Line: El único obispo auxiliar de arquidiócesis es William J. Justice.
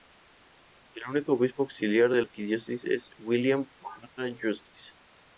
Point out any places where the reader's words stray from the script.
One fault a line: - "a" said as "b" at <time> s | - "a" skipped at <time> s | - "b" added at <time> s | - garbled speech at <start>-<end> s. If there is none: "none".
none